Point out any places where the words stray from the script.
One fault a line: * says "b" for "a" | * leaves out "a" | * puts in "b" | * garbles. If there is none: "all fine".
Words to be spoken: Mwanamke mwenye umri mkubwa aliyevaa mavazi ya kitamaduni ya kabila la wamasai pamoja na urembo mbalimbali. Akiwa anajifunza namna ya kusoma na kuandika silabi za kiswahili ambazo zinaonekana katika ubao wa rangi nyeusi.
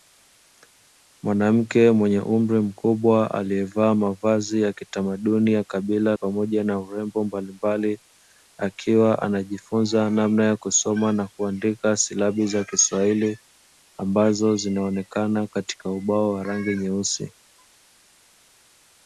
* leaves out "la wamasai"